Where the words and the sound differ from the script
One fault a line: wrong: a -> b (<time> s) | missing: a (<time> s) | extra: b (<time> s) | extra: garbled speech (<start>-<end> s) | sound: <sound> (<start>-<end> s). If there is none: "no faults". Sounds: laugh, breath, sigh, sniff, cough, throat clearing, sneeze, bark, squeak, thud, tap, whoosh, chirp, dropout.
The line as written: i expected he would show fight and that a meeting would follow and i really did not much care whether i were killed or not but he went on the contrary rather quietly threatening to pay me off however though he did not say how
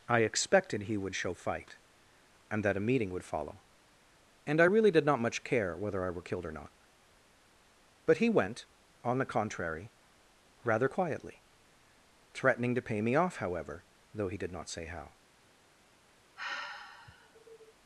sound: sigh (16.4-17.7 s)